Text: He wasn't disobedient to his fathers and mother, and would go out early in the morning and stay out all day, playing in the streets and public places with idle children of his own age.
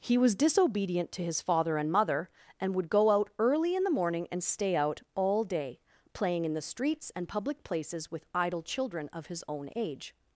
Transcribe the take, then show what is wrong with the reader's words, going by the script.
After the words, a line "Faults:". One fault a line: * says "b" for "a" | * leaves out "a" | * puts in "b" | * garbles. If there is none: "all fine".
He was disobedient to his father and mother, and would go out early in the morning and stay out all day, playing in the streets and public places with idle children of his own age.
Faults:
* says "was" for "wasn't"
* says "father" for "fathers"